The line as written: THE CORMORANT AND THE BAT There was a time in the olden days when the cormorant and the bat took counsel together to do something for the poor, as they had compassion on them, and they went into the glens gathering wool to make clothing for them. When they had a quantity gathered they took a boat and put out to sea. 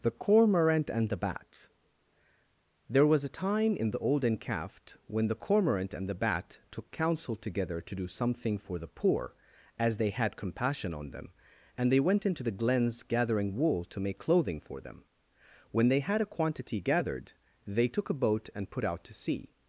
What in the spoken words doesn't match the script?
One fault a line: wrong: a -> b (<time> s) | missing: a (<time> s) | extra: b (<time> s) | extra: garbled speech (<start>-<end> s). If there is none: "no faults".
wrong: days -> caft (4.4 s)